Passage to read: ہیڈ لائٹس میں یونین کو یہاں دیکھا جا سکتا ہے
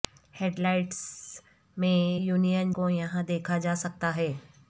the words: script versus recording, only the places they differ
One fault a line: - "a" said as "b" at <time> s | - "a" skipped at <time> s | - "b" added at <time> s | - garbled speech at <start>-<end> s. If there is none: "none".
none